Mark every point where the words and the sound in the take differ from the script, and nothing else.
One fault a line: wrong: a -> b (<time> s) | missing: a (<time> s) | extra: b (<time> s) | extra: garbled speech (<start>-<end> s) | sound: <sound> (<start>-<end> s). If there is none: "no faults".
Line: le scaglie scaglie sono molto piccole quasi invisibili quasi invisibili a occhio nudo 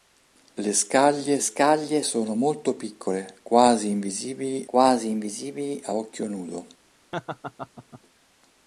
sound: laugh (7.1-8.0 s)